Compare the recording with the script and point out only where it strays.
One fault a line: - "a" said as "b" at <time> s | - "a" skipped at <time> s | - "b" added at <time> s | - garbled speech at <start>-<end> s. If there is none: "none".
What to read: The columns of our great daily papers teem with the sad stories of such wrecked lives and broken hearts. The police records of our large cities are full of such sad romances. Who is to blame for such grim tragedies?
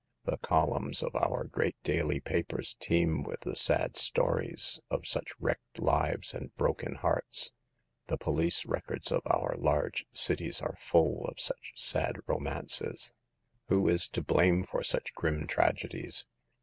none